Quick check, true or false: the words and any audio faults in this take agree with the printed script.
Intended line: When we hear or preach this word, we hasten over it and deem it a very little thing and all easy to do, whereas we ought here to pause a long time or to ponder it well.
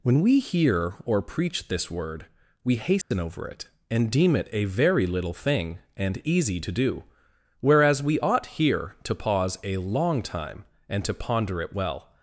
false